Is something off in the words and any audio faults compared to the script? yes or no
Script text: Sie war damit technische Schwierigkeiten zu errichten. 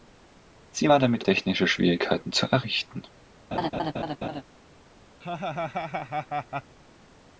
yes